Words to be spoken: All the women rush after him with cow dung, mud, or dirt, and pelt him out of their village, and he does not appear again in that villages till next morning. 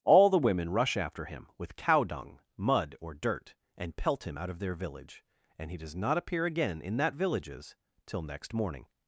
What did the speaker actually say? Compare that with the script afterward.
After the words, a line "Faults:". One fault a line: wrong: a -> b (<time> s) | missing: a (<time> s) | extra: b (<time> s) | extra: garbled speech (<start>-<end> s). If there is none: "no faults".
All the women rush after him with cow dung, mud, or dirt, and pelt him out of their village, and he does not appear again in that villages till next morning.
Faults:
no faults